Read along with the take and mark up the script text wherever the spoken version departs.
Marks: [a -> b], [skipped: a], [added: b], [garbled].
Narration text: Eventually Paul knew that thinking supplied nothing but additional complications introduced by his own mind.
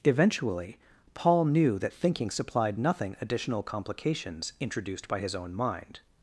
Eventually Paul knew that thinking supplied nothing [skipped: but] additional complications introduced by his own mind.